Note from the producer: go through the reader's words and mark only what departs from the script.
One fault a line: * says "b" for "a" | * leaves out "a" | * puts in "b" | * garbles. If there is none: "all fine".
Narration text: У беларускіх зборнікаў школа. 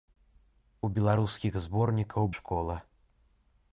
all fine